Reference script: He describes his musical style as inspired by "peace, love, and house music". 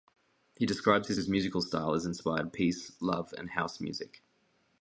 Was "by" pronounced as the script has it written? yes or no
no